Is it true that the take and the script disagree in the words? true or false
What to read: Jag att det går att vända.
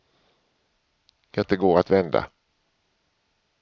false